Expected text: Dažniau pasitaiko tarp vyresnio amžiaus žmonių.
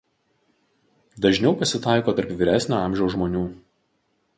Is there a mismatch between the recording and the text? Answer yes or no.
no